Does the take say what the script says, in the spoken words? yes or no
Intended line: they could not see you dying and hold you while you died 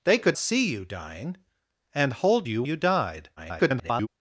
no